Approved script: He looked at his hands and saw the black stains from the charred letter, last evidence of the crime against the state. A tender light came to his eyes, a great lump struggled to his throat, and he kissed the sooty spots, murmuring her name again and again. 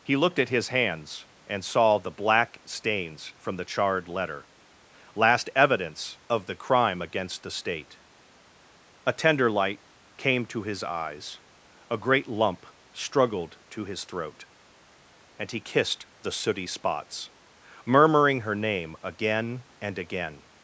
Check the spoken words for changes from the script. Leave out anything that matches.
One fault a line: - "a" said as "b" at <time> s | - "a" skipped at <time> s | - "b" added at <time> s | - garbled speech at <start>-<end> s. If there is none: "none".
none